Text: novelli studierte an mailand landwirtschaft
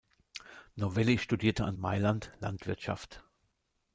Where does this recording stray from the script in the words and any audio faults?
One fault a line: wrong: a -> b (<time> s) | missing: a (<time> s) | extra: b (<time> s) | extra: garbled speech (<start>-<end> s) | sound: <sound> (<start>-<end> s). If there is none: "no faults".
no faults